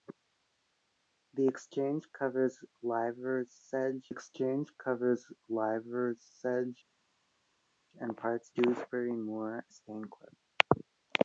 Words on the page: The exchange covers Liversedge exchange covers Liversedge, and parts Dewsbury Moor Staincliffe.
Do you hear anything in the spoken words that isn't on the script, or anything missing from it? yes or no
no